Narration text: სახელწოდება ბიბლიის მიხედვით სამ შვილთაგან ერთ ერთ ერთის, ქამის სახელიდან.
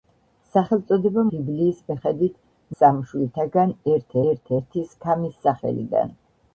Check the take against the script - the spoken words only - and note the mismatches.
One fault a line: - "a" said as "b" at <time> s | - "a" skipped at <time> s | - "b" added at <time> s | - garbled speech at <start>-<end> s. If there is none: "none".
none